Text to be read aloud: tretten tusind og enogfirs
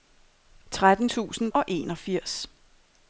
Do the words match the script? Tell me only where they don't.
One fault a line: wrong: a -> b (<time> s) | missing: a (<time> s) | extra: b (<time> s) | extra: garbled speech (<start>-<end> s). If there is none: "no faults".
no faults